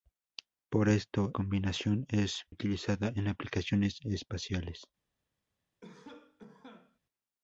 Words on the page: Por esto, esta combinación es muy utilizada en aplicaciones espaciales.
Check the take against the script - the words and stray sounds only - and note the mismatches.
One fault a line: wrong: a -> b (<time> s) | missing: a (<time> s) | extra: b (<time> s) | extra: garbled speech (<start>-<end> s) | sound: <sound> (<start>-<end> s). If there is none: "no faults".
missing: esta (1.4 s)
missing: muy (2.4 s)
sound: cough (5.8-7.0 s)